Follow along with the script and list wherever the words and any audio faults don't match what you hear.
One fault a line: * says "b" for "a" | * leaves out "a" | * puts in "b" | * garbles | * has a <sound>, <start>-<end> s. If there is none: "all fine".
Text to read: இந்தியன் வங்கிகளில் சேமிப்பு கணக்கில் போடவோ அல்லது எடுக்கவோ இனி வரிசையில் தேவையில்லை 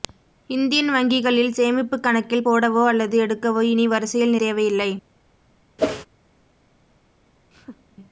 * has a whoosh, 5.8-6.1 s
* has a laugh, 7.5-8.0 s